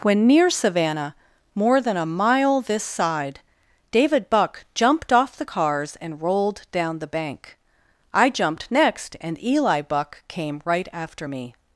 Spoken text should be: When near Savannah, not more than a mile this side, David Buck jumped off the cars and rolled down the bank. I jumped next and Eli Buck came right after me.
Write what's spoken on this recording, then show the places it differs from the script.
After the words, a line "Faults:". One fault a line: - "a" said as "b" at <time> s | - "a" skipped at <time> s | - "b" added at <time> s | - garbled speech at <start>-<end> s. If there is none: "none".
When near Savannah, more than a mile this side, David Buck jumped off the cars and rolled down the bank. I jumped next and Eli Buck came right after me.
Faults:
- "not" skipped at 1.1 s